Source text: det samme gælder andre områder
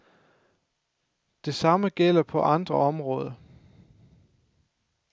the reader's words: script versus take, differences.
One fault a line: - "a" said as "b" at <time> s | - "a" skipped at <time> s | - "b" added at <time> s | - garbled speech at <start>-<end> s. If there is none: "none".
- "på" added at 2.2 s